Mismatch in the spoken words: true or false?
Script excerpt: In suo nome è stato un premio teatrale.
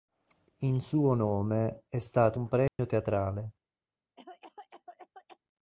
false